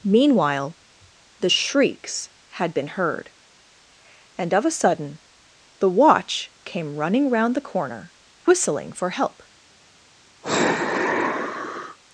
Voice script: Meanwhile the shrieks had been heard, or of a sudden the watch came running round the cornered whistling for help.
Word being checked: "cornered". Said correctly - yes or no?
no